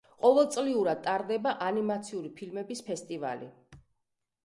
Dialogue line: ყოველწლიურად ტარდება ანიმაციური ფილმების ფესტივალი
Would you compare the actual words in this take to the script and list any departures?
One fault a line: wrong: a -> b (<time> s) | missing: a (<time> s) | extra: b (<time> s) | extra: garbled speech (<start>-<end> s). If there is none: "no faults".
no faults